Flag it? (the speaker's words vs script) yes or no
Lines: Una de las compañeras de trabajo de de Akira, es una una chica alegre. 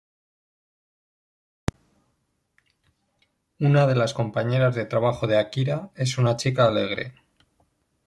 yes